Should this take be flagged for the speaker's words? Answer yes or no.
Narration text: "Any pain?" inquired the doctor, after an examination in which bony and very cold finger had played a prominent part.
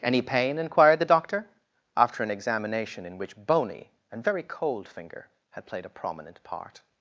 no